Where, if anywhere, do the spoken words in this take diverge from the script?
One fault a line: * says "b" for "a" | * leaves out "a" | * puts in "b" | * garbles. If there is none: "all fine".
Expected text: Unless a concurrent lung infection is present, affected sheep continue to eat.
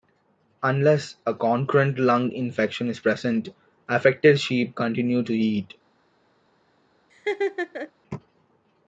all fine